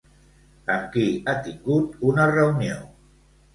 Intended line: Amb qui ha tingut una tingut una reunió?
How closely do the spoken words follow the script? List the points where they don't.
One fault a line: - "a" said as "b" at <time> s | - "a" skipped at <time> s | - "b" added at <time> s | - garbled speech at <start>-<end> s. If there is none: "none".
- "tingut una" skipped at 2.3 s